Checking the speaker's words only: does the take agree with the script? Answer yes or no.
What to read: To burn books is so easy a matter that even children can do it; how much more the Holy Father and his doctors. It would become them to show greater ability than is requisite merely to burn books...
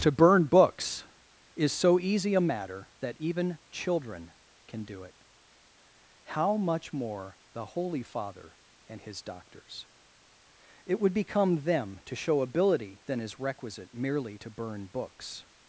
no